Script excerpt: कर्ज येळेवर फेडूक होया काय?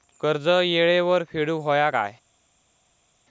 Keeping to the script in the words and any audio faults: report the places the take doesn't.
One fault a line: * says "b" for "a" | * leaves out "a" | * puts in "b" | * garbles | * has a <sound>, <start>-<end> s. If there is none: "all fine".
all fine